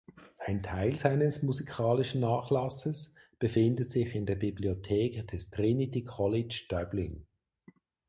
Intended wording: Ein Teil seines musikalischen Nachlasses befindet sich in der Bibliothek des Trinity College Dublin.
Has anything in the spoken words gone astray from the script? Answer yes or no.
no